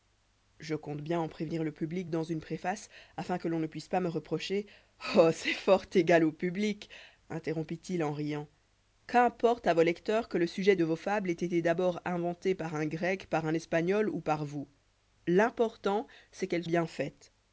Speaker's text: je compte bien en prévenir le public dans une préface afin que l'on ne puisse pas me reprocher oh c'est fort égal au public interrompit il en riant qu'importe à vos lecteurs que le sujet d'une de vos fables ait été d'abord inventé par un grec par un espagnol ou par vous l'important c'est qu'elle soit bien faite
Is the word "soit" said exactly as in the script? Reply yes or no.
no